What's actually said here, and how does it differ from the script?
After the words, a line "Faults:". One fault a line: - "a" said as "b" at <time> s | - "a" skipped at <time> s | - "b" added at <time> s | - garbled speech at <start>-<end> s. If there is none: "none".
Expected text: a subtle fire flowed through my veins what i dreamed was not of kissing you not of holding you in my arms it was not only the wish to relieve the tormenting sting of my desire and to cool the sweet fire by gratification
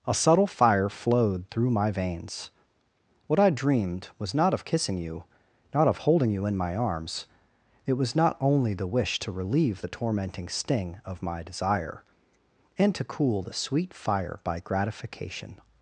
a subtle fire flowed through my veins what i dreamed was not of kissing you not of holding you in my arms it was not only the wish to relieve the tormenting sting of my desire and to cool the sweet fire by gratification
Faults:
none